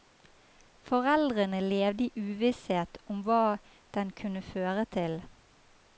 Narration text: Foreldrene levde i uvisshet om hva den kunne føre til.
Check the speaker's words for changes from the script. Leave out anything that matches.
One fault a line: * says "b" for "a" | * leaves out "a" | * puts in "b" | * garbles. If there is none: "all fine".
all fine